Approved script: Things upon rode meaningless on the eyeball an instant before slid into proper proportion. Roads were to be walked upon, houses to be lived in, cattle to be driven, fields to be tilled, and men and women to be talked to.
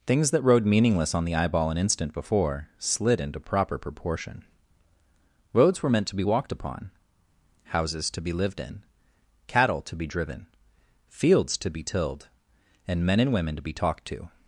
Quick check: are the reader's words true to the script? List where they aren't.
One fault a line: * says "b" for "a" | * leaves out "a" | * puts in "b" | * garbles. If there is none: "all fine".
* says "that" for "upon"
* puts in "meant"